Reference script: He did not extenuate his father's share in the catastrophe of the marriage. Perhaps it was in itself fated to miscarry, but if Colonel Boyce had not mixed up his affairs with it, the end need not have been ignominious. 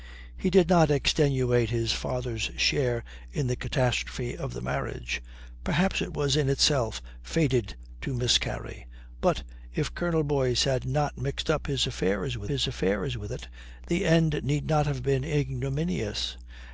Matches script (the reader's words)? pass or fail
fail